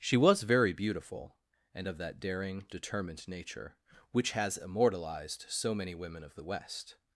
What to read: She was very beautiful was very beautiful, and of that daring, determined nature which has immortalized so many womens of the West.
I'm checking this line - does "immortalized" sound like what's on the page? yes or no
yes